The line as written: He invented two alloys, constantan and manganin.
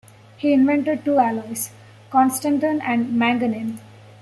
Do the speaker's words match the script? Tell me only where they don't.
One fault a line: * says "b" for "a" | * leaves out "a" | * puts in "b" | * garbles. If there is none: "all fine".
all fine